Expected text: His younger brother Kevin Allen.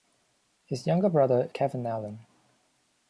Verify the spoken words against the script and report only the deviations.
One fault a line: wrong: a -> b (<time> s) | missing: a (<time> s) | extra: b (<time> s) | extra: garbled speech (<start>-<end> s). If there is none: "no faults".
no faults